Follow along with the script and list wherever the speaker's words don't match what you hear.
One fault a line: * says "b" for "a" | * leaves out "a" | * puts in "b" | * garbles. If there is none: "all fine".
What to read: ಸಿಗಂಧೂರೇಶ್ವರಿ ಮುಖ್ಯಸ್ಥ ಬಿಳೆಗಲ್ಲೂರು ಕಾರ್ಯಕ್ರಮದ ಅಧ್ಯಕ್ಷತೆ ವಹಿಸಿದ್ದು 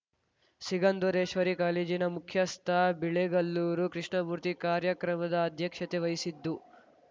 * puts in "ಕಾಲೇಜಿನ"
* puts in "ಕೃಷ್ಣಮೂರ್ತಿ"